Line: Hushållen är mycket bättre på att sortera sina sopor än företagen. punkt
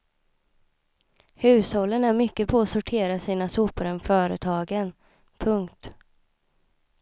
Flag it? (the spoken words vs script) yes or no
yes